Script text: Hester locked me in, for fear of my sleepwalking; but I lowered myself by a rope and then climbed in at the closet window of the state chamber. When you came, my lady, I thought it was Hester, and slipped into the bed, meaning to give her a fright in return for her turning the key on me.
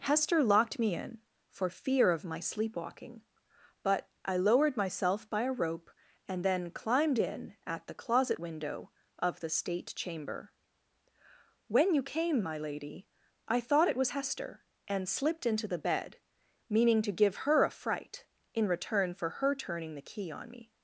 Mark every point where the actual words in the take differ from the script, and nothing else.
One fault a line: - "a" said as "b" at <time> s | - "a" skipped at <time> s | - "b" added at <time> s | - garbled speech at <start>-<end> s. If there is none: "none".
none